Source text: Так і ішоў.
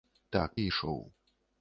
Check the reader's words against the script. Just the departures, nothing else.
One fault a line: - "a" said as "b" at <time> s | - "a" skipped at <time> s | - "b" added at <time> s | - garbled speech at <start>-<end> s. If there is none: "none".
none